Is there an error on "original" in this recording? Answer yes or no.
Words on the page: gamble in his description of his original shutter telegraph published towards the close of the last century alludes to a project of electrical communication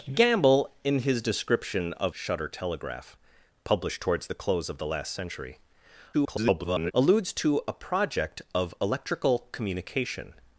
yes